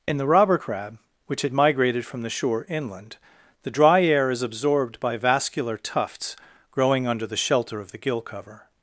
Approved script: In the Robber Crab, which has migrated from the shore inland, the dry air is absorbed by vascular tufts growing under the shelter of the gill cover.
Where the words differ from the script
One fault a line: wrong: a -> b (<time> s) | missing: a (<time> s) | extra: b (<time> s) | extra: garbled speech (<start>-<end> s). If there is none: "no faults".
wrong: has -> had (1.4 s)